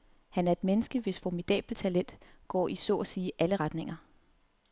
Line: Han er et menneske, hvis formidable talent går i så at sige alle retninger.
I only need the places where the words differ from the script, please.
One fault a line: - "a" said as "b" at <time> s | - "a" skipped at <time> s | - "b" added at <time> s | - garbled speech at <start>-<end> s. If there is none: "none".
none